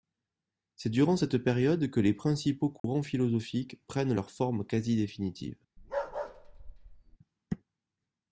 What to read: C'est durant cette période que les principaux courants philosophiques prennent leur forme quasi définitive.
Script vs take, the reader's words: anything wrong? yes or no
no